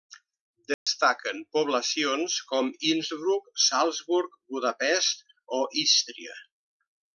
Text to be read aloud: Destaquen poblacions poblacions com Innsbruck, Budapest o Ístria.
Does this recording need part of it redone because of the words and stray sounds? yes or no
yes